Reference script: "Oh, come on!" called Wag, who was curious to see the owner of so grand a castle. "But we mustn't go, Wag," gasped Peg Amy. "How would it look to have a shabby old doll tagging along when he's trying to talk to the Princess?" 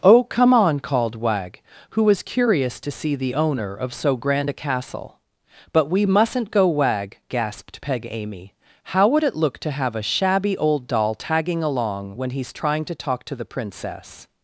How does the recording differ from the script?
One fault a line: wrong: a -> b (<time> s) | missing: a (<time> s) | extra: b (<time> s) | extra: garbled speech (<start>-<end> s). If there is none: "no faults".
no faults